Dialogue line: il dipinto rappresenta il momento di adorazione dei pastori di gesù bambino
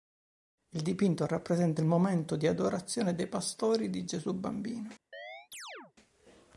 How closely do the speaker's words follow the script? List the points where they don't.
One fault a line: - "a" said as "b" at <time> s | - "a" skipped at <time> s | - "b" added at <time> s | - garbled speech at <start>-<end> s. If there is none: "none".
none